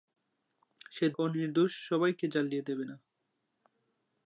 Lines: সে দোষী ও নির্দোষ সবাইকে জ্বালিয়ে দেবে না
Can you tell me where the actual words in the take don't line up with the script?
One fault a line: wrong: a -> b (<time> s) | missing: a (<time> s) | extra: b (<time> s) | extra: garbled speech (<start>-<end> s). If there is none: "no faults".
missing: দোষী (1.1 s)